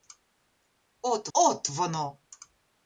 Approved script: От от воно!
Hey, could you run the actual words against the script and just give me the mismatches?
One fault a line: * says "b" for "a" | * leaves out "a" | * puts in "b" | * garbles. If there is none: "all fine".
all fine